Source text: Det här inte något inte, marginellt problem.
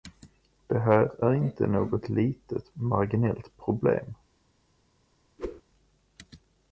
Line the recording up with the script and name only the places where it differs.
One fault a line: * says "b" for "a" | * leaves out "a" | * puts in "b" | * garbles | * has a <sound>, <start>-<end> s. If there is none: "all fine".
* puts in "är"
* says "litet" for "inte"
* has a whoosh, 5.4-5.6 s